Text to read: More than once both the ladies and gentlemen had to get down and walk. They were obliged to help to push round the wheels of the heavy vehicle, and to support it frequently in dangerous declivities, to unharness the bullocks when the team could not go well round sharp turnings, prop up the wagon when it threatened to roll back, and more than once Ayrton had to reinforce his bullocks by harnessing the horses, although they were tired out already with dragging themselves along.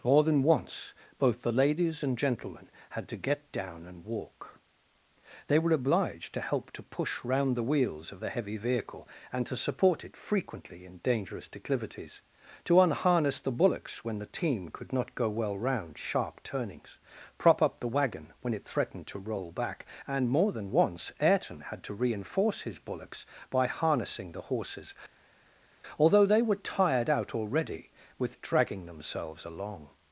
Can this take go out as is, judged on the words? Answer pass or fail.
pass